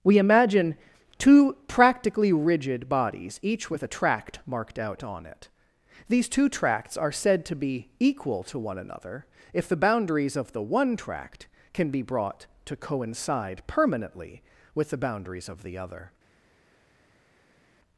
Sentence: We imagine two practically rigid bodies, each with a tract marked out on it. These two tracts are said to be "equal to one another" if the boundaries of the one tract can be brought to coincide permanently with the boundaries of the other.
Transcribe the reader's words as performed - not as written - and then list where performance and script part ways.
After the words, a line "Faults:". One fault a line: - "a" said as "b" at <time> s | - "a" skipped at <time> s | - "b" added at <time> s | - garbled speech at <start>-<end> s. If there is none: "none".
We imagine two practically rigid bodies, each with a tract marked out on it. These two tracts are said to be "equal to one another" if the boundaries of the one tract can be brought to coincide permanently with the boundaries of the other.
Faults:
none